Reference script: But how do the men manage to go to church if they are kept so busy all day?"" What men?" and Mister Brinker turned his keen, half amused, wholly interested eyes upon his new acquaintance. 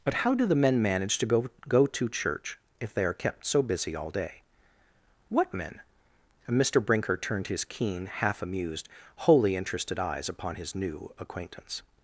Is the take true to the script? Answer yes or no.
no